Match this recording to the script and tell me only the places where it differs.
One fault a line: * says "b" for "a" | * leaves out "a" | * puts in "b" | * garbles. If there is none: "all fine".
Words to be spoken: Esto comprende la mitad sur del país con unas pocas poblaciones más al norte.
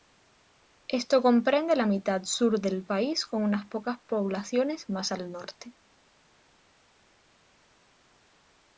all fine